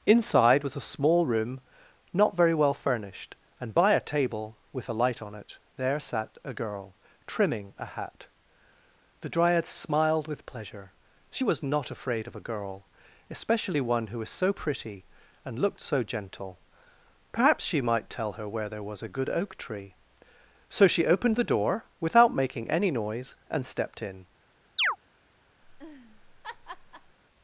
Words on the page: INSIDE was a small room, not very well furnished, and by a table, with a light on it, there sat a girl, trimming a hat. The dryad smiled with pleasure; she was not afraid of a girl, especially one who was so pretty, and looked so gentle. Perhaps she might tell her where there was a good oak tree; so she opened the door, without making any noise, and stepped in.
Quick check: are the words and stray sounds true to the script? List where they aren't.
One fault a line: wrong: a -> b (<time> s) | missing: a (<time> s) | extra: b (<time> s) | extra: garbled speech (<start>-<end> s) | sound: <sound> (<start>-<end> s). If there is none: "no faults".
sound: chirp (24.8-25.0 s)
sound: laugh (25.6-27.2 s)